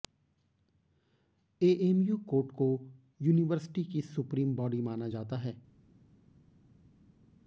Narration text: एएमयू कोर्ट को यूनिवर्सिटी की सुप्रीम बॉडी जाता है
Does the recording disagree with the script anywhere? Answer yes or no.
yes